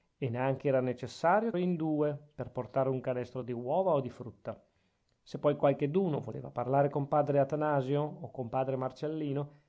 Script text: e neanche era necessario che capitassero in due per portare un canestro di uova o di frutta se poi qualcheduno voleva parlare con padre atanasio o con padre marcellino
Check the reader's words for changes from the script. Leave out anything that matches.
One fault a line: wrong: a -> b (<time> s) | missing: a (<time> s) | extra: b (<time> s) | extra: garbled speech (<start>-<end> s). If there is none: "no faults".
missing: che capitassero (1.5 s)